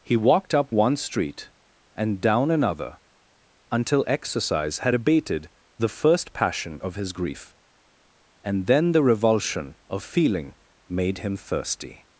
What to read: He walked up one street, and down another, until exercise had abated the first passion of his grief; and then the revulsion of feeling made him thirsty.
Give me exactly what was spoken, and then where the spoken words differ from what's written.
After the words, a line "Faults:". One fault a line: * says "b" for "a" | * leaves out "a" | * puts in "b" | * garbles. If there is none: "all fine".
He walked up one street, and down another, until exercise had abated the first passion of his grief; and then the revulsion of feeling made him thirsty.
Faults:
all fine